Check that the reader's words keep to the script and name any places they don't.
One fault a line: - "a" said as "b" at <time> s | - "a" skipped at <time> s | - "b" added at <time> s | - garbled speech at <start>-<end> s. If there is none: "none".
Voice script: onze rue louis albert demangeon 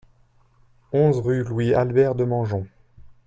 none